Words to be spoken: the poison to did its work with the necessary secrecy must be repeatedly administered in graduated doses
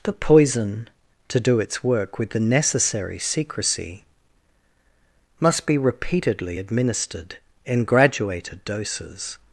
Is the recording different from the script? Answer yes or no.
yes